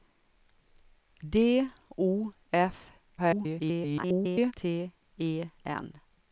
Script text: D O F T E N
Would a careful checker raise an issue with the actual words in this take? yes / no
yes